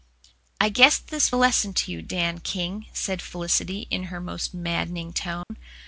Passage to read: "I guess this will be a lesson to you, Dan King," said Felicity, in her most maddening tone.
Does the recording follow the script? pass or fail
fail